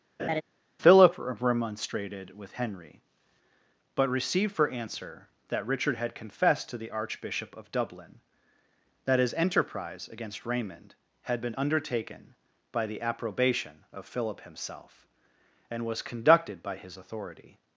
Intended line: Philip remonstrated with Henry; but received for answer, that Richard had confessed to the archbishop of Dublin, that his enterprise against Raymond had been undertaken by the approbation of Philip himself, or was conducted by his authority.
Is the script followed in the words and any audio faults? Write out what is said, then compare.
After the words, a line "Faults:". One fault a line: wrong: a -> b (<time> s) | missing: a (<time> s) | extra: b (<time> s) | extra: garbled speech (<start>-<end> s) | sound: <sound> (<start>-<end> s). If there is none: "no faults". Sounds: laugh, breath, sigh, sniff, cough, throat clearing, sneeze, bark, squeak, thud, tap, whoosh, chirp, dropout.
Philip remonstrated with Henry; but received for answer, that Richard had confessed to the archbishop of Dublin, that his enterprise against Raymond had been undertaken by the approbation of Philip himself, and was conducted by his authority.
Faults:
sound: laugh (0.2-0.4 s)
wrong: or -> and (15.7 s)